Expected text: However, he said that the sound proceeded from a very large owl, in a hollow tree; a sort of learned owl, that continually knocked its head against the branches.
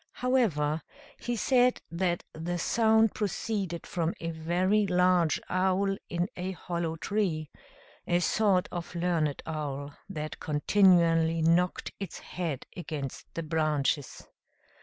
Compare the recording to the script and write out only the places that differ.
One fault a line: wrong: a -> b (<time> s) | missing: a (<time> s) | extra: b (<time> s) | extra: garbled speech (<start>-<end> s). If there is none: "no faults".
no faults